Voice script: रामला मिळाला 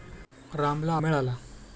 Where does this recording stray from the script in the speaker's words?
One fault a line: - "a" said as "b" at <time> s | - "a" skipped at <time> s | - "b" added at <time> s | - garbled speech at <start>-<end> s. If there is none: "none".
none